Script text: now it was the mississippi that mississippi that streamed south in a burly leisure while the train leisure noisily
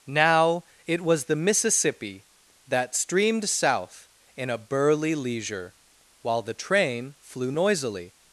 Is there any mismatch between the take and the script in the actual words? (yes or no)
yes